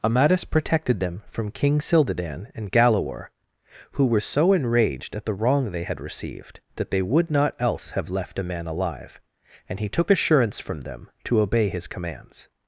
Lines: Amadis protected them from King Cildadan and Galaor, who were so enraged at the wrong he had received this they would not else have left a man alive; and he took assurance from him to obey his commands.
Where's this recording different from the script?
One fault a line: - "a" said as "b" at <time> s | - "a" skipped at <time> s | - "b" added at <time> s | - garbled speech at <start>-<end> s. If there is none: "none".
- "he" said as "they" at 5.7 s
- "this" said as "that" at 6.8 s
- "him" said as "them" at 10.8 s